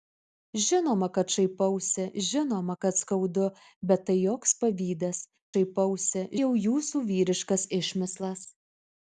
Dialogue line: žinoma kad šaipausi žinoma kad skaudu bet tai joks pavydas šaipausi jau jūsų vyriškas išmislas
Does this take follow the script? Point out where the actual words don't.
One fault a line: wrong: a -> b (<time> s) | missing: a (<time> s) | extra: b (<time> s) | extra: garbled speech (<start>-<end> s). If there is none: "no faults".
no faults